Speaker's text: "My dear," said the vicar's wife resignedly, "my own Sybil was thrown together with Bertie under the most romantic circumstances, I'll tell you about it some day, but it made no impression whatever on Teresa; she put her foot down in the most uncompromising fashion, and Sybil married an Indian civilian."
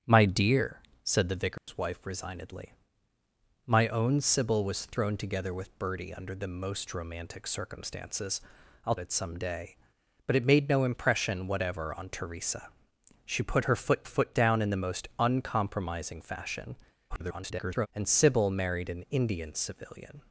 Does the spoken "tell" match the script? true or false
false